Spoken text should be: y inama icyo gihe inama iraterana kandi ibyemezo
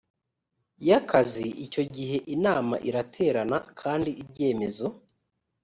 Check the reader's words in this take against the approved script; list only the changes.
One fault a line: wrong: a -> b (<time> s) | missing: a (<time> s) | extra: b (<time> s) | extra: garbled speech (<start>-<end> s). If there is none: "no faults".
wrong: inama -> akazi (1.0 s)